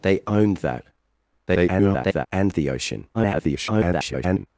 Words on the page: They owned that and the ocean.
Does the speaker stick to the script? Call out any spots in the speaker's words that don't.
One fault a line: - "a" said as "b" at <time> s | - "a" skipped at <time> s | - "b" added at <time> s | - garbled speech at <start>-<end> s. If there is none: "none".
- garbled speech at 1.5-2.3 s
- garbled speech at 3.1-4.5 s